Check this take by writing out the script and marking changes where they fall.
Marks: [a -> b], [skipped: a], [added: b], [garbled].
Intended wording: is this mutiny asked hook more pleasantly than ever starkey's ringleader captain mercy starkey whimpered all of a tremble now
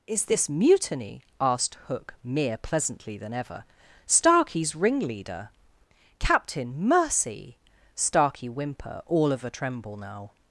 is this mutiny asked hook [more -> mere] pleasantly than ever starkey's ringleader captain mercy starkey [whimpered -> whimper] all of a tremble now